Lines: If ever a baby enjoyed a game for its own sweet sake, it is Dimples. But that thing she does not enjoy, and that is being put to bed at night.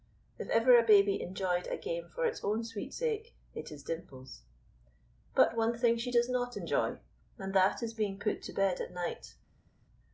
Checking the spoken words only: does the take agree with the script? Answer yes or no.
no